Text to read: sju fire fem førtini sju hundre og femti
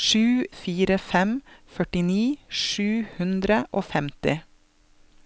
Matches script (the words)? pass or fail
pass